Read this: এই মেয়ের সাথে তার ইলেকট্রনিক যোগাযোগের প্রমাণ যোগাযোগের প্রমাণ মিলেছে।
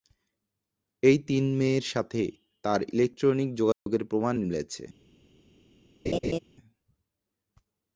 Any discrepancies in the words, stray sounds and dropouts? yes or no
yes